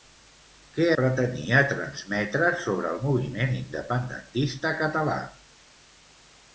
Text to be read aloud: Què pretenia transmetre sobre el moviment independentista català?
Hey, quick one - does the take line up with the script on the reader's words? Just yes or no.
yes